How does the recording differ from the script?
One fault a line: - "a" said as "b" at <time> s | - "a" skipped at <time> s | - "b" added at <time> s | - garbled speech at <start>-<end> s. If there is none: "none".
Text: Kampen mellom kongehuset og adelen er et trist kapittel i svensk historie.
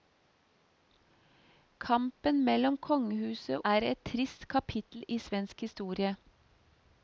- "og adelen" skipped at 3.6 s